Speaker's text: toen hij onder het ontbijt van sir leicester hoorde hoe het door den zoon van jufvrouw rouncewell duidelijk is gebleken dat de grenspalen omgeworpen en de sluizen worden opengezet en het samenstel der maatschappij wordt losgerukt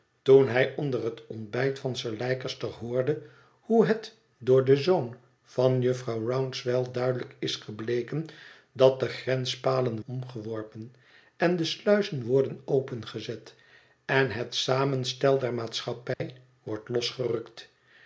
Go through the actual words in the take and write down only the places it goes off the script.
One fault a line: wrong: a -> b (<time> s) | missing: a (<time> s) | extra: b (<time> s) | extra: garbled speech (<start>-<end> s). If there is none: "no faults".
no faults